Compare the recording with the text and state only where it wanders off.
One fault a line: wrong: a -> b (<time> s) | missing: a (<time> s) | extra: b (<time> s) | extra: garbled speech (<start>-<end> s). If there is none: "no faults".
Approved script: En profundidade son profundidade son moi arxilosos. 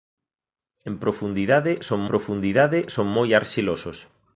no faults